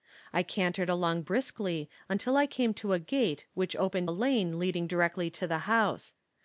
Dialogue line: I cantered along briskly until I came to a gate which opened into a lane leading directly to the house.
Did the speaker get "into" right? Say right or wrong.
wrong